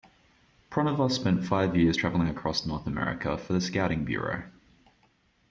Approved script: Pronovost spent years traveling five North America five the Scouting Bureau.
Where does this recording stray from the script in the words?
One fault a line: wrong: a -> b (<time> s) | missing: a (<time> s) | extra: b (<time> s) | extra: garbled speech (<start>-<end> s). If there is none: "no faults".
extra: five (1.4 s)
wrong: five -> across (2.3 s)
wrong: five -> for (3.4 s)